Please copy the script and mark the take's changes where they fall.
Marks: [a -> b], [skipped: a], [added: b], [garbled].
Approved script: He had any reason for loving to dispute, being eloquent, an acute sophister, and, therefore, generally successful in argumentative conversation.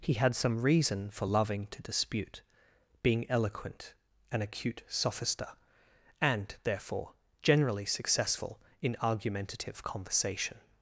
He had [any -> some] reason for loving to dispute, being eloquent, an acute sophister, and, therefore, generally successful in argumentative conversation.